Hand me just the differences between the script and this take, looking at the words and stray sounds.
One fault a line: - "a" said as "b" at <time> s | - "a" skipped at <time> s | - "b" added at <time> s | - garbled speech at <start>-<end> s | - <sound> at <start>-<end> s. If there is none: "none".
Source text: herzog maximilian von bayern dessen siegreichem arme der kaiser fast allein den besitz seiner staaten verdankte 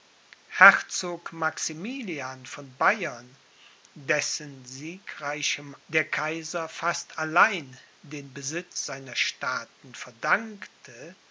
- "arme" skipped at 5.8 s